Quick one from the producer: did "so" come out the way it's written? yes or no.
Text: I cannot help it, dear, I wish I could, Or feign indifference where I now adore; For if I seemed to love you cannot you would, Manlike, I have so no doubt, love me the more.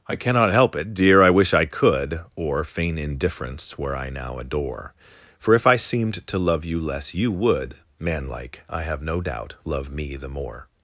no